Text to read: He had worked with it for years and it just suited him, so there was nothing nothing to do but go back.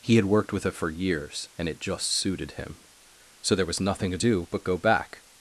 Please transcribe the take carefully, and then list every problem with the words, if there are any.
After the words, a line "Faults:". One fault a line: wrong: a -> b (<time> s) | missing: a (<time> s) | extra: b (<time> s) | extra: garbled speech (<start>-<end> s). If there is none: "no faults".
He had worked with it for years and it just suited him, so there was nothing to do but go back.
Faults:
missing: nothing (4.1 s)